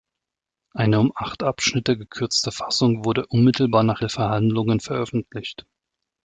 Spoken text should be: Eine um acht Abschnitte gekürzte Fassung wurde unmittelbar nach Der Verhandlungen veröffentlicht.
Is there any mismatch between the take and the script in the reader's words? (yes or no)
no